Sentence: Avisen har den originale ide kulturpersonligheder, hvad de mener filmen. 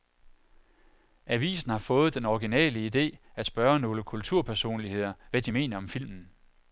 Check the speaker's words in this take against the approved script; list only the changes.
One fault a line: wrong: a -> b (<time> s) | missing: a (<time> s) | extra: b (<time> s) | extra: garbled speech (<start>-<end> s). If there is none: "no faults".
extra: fået (1.8 s)
extra: at spørge nogle (3.4 s)
extra: om (5.8 s)